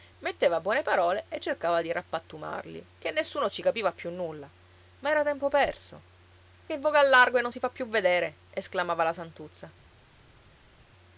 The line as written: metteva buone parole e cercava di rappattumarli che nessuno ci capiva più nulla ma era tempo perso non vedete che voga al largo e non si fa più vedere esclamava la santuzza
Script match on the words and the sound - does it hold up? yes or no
no